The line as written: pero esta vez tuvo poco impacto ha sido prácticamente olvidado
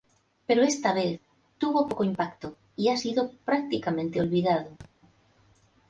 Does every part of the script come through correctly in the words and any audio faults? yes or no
no